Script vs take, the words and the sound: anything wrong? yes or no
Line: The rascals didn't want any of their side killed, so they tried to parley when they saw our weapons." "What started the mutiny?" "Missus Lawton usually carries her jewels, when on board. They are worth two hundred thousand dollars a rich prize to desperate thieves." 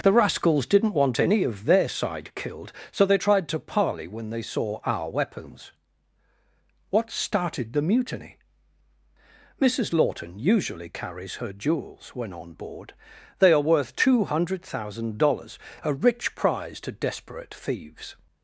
no